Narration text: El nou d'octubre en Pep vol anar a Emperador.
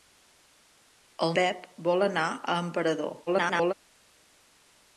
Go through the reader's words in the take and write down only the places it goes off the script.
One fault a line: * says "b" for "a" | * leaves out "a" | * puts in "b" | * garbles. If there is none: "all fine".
* leaves out "nou d'octubre en"
* garbles